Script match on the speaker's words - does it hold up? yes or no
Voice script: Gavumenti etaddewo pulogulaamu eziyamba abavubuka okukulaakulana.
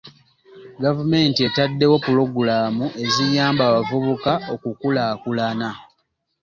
yes